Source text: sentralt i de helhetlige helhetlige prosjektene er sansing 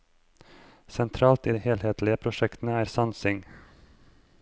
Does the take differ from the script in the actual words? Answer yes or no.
yes